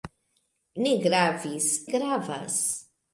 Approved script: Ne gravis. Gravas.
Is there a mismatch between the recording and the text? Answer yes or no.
no